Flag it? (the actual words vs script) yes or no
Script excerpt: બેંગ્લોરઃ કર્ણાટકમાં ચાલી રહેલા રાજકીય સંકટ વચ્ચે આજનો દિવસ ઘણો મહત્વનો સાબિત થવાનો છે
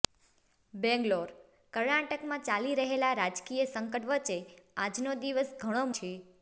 yes